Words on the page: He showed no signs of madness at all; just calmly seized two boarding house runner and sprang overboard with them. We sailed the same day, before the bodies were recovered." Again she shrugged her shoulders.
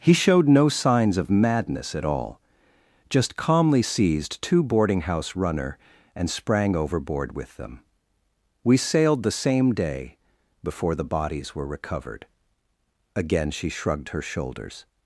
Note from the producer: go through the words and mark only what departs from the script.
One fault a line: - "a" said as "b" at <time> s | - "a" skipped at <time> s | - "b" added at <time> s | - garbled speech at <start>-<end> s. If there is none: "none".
none